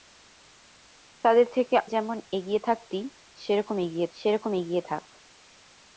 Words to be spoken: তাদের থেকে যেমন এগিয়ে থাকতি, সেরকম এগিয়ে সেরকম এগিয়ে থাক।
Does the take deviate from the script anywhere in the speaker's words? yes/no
no